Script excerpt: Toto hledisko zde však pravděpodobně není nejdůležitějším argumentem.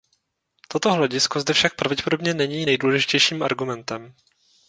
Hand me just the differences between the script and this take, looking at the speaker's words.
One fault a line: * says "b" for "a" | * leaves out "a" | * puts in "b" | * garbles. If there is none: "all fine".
all fine